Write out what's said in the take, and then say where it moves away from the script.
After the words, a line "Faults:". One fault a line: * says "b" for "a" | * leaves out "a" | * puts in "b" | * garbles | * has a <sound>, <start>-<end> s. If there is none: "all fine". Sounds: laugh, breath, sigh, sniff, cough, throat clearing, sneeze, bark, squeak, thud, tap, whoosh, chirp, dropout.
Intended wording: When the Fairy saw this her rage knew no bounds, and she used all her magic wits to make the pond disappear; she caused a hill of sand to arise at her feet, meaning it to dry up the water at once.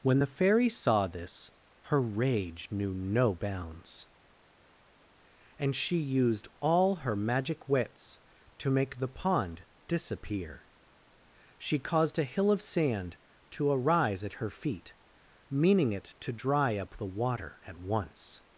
When the Fairy saw this her rage knew no bounds, and she used all her magic wits to make the pond disappear; she caused a hill of sand to arise at her feet, meaning it to dry up the water at once.
Faults:
all fine